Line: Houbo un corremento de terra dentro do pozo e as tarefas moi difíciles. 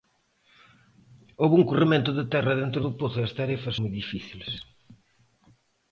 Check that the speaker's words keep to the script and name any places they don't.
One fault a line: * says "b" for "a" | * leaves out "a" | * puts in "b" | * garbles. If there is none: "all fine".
all fine